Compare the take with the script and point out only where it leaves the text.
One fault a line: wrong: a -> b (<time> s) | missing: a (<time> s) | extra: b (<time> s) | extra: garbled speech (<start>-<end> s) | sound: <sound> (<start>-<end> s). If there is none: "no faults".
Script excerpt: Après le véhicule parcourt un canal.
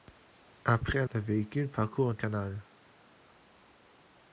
no faults